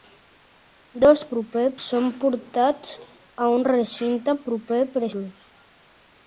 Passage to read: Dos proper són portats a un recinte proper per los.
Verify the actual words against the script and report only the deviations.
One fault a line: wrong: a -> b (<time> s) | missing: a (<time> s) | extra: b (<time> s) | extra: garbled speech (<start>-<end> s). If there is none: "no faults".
no faults